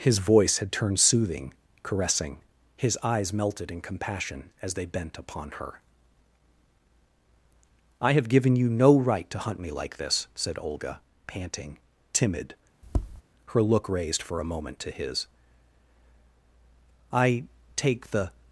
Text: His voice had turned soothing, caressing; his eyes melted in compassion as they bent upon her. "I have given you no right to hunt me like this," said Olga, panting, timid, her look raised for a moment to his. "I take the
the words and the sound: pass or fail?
fail